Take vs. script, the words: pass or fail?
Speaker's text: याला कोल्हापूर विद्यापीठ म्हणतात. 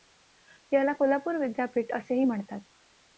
fail